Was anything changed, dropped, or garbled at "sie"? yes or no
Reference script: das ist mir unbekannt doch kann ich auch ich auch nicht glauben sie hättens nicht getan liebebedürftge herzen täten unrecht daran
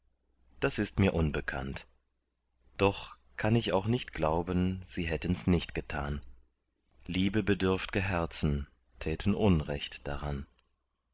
no